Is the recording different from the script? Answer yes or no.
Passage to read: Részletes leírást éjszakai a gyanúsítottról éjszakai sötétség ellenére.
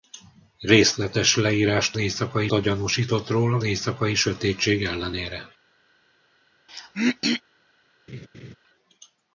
no